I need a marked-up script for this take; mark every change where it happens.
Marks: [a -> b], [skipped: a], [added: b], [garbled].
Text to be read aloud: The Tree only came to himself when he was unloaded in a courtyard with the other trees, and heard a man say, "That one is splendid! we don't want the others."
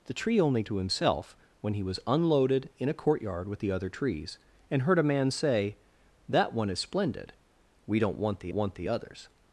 The Tree only [skipped: came] to himself when he was unloaded in a courtyard with the other trees, and heard a man say, "That one is splendid! we don't want the [added: want the] others."